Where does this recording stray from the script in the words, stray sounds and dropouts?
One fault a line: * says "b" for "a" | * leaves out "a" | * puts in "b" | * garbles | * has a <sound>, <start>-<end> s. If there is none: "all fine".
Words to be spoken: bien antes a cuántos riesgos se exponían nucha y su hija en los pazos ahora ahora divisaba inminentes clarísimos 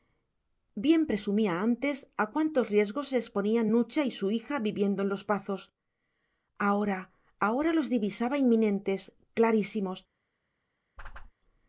* puts in "presumía"
* puts in "viviendo"
* puts in "los"
* has a whoosh, 11.0-11.3 s